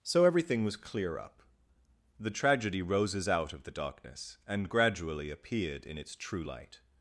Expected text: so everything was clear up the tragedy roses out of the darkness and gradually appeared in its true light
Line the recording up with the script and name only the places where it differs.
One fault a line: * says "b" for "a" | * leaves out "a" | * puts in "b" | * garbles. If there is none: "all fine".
all fine